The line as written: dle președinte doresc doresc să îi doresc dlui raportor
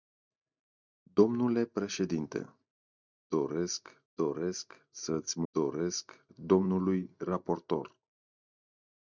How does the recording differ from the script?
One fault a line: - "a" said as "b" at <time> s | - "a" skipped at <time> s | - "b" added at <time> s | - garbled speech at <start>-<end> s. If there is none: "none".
none